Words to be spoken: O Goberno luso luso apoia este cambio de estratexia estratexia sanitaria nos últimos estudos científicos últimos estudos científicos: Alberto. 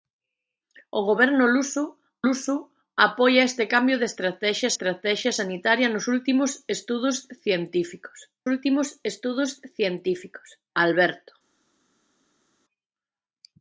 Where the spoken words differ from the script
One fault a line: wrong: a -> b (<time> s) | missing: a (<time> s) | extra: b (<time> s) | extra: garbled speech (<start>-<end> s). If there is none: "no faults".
no faults